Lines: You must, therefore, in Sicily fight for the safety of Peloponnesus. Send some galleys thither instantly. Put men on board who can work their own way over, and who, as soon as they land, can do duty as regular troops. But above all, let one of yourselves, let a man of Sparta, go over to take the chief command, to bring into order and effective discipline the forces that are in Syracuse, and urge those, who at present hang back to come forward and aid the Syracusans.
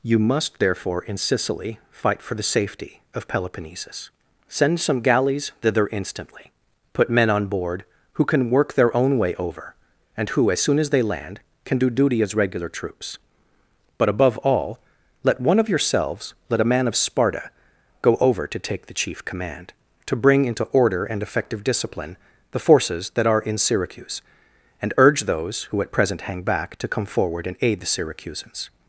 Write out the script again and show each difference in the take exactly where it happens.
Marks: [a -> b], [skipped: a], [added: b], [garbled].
You must, therefore, in Sicily fight for the safety of Peloponnesus. Send some galleys thither instantly. Put men on board who can work their own way over, and who, as soon as they land, can do duty as regular troops. But above all, let one of yourselves, let a man of Sparta, go over to take the chief command, to bring into order and effective discipline the forces that are in Syracuse, and urge those, who at present hang back to come forward and aid the Syracusans.